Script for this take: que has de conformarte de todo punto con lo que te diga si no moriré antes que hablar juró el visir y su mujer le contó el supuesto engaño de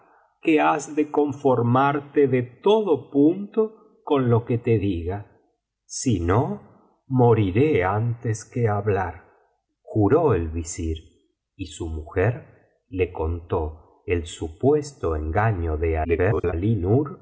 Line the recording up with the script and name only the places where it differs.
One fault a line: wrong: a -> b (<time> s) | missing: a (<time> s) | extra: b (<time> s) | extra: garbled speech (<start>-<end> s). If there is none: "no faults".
extra: garbled speech (16.0-16.5 s)